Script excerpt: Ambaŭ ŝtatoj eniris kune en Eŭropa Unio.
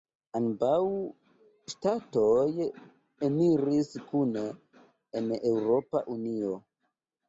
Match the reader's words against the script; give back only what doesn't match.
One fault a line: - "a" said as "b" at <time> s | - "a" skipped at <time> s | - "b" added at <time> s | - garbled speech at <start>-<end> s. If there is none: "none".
none